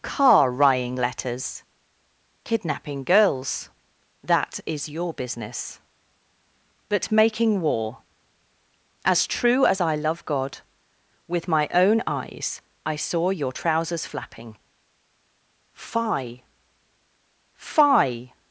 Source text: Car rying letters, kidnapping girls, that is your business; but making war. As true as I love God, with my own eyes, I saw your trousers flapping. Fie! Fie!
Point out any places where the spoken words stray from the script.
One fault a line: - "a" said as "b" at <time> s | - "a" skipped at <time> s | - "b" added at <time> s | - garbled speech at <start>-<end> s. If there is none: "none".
none